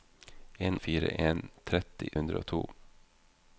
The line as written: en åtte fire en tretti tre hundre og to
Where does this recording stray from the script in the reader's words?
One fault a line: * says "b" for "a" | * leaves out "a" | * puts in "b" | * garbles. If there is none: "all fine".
* leaves out "åtte"
* leaves out "tre"